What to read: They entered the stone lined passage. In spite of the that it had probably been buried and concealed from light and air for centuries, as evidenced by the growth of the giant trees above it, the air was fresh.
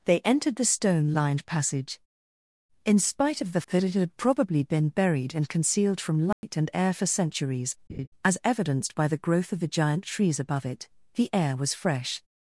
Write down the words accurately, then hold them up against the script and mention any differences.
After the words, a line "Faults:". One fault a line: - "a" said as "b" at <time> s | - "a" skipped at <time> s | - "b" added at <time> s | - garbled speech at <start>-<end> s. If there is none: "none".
They entered the stone lined passage. In spite of the that it had probably been buried and concealed from light and air for centuries, as evidenced by the growth of the giant trees above it, the air was fresh.
Faults:
none